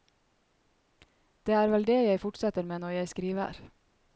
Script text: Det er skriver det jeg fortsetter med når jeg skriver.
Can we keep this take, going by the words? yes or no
no